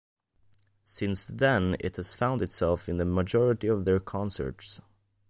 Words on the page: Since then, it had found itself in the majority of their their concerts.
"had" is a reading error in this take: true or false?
true